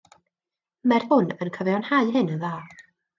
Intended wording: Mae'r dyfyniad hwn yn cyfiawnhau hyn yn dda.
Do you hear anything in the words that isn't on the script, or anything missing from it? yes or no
yes